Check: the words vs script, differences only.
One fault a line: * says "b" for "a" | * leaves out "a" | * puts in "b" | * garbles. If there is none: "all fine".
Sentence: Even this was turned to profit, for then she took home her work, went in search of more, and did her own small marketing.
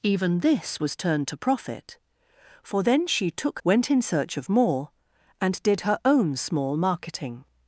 * leaves out "home her work"